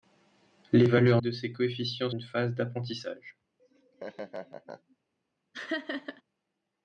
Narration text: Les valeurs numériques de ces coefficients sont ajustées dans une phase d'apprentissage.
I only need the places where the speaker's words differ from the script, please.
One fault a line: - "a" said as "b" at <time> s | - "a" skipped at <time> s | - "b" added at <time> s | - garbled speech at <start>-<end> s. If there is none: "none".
- "numériques" skipped at 1.2 s
- "sont ajustées dans" skipped at 2.1 s